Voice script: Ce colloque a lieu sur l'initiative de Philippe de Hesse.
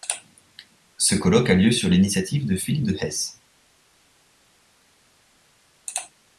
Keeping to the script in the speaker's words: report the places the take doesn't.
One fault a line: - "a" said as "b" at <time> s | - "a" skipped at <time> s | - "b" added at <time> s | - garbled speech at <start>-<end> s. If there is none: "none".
none